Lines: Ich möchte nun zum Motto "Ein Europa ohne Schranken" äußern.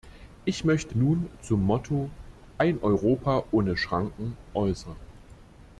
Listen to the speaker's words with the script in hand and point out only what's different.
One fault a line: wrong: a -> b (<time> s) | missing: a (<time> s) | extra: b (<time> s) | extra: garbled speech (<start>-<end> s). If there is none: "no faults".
no faults